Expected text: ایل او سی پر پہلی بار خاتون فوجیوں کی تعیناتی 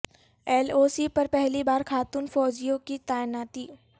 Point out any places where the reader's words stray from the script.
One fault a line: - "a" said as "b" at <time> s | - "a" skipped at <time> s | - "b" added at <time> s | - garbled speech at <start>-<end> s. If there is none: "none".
none